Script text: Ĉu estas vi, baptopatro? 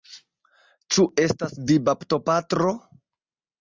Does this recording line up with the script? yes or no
yes